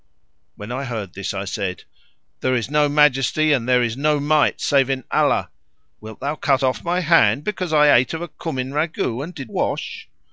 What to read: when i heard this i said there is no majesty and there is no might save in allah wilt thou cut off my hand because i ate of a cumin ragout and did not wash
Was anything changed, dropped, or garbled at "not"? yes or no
yes